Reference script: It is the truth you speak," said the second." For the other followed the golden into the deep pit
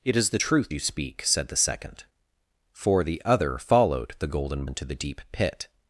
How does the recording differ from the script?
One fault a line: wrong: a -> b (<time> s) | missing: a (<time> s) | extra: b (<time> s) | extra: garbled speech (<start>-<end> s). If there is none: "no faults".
no faults